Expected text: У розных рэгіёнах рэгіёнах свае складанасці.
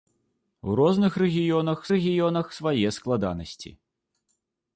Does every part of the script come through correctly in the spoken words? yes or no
yes